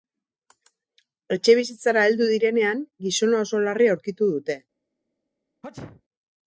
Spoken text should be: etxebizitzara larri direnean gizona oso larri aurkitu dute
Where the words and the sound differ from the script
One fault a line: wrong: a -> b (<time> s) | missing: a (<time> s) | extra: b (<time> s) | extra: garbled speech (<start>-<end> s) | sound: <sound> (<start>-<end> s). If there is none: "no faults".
wrong: larri -> heldu (2.1 s)
sound: sneeze (5.6-6.0 s)